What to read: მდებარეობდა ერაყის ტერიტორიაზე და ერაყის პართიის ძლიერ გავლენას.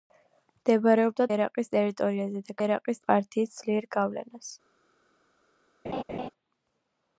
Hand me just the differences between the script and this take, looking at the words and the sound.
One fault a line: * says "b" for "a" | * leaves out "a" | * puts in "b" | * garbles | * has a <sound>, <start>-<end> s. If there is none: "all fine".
* has a laugh, 5.8-6.3 s